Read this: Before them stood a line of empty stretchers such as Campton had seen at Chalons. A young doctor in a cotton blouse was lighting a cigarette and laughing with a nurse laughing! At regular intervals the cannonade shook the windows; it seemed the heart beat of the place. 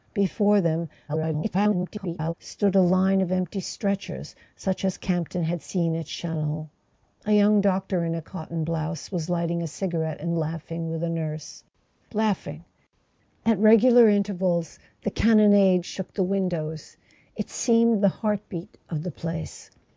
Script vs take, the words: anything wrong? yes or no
yes